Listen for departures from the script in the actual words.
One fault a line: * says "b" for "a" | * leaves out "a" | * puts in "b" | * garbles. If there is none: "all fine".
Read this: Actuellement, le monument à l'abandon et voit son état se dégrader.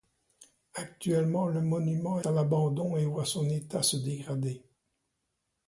all fine